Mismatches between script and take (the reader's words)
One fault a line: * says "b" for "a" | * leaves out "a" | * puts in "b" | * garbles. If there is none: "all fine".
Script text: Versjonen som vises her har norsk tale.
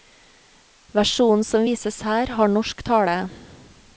all fine